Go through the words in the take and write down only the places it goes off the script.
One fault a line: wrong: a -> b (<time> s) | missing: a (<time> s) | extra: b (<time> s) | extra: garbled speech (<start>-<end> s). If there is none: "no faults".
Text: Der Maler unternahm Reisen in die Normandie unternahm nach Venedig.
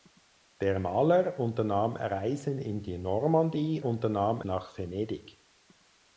no faults